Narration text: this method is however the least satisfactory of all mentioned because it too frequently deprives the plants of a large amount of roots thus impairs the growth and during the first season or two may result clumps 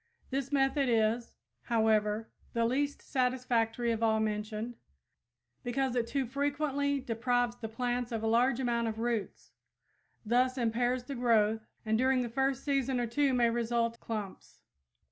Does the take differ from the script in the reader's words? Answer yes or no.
no